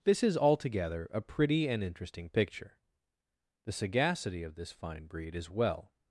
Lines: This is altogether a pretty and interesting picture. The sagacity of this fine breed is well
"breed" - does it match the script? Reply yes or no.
yes